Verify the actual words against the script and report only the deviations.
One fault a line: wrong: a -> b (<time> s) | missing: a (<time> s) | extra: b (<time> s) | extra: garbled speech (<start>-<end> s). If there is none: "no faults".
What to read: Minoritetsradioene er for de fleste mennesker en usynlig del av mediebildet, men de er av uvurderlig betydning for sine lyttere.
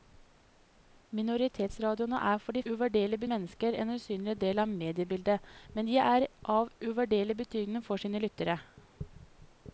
wrong: fleste -> uvurderlig (2.7 s)